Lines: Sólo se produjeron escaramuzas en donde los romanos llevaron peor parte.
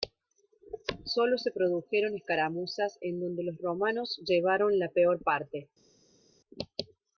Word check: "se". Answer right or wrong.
right